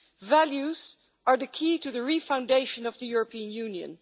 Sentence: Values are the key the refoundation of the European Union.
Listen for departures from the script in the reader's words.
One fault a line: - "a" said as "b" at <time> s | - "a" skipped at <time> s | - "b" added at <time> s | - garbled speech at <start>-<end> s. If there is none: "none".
- "to" added at 1.8 s